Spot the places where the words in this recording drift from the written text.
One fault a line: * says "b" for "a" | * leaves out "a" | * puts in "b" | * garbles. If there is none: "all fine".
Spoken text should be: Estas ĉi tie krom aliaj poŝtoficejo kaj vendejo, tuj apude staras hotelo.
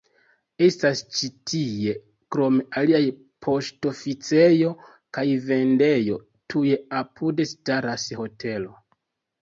all fine